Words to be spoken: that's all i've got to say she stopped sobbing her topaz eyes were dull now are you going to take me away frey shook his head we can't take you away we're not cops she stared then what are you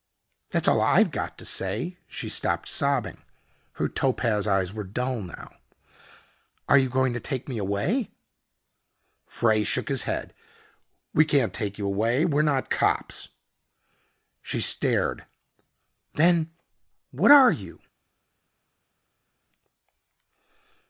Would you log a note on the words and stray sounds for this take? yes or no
no